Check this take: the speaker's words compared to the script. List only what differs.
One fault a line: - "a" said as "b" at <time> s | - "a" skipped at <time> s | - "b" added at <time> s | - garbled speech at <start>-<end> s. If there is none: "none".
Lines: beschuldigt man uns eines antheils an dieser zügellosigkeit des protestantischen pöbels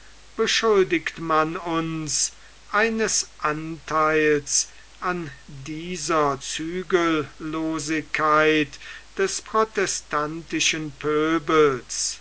none